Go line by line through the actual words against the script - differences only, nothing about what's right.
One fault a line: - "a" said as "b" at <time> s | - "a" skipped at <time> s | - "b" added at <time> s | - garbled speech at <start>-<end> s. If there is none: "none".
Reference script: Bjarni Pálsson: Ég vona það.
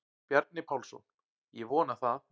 none